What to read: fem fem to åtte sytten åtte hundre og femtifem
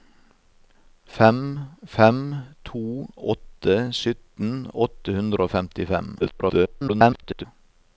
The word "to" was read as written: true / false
true